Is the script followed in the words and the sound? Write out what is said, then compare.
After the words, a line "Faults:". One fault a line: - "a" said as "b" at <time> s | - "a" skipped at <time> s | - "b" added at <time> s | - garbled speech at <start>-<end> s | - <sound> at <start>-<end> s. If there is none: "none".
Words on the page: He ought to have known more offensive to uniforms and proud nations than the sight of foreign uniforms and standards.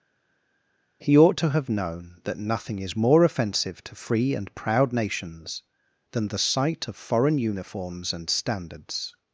He ought to have known that nothing is more offensive to free and proud nations than the sight of foreign uniforms and standards.
Faults:
- "that nothing is" added at 2.3 s
- "uniforms" said as "free" at 4.0 s